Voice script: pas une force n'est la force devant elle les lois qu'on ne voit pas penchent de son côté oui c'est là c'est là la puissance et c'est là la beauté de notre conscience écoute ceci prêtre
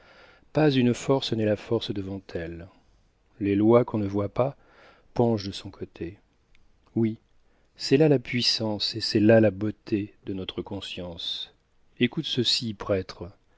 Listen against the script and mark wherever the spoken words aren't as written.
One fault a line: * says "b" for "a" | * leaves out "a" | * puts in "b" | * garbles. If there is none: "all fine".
* leaves out "c'est là"